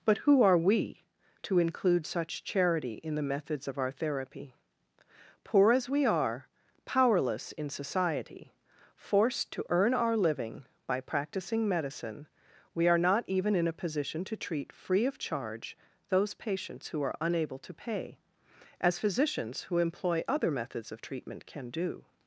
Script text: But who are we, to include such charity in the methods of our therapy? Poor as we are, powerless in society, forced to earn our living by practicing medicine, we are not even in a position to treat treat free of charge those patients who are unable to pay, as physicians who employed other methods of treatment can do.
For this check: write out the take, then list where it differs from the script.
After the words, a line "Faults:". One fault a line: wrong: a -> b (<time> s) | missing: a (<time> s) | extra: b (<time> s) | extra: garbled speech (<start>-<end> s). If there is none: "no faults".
But who are we, to include such charity in the methods of our therapy? Poor as we are, powerless in society, forced to earn our living by practicing medicine, we are not even in a position to treat free of charge those patients who are unable to pay, as physicians who employ other methods of treatment can do.
Faults:
missing: treat (14.7 s)
wrong: employed -> employ (19.8 s)